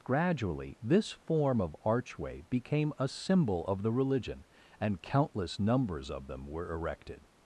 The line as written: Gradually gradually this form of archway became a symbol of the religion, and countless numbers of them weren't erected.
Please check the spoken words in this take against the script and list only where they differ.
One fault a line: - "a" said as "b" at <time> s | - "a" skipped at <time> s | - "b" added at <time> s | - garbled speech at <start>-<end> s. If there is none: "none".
- "gradually" skipped at 0.8 s
- "weren't" said as "were" at 6.5 s